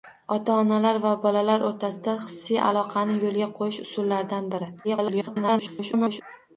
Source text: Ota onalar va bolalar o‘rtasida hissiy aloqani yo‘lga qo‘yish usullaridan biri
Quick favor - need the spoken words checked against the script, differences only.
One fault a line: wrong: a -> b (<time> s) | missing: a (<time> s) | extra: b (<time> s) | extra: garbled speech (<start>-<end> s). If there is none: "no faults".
extra: garbled speech (4.8-6.2 s)